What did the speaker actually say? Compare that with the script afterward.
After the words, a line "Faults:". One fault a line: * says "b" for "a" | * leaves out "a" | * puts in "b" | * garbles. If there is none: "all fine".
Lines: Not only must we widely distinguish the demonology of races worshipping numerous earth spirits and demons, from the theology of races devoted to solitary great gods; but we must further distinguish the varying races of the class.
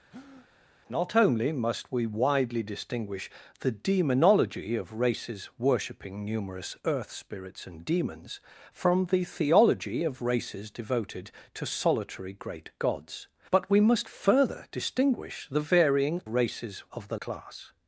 Not only must we widely distinguish the demonology of races worshipping numerous earth spirits and demons, from the theology of races devoted to solitary great gods; but we must further distinguish the varying races of the class.
Faults:
all fine